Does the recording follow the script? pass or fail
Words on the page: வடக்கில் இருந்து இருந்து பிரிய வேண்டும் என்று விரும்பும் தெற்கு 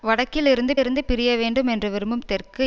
pass